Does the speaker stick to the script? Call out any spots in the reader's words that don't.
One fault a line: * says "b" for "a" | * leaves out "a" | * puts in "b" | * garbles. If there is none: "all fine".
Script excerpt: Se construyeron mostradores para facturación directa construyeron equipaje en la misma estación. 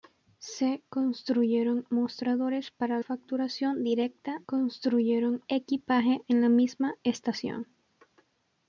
all fine